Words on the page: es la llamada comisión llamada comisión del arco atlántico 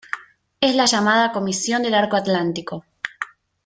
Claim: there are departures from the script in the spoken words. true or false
true